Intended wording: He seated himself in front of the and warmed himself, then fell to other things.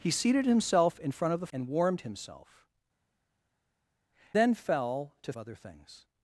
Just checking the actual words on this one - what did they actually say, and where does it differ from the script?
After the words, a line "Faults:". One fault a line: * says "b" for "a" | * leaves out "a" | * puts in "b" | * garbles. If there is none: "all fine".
He seated himself in front of the and warmed himself, then fell to other things.
Faults:
all fine